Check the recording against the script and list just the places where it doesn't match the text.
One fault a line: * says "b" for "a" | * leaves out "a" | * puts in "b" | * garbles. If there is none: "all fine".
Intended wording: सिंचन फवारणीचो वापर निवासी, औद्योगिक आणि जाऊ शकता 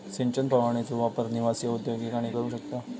all fine